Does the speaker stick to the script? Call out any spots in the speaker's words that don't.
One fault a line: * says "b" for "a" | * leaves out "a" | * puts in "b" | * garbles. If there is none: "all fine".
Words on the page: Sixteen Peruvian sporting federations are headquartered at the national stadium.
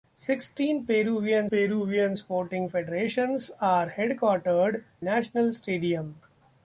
* puts in "Peruvian"
* leaves out "at the"